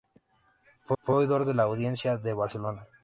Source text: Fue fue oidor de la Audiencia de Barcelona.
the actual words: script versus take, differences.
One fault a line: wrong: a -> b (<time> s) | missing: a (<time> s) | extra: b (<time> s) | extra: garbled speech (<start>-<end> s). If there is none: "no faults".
no faults